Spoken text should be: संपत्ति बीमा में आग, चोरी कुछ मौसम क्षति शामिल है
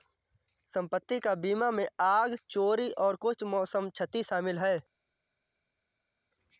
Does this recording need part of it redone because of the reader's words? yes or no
yes